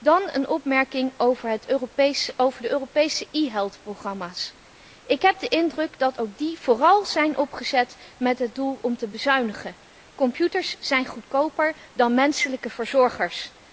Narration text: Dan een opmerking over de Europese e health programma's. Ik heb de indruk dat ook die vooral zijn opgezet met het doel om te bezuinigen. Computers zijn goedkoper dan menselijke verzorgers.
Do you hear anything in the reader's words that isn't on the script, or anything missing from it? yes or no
no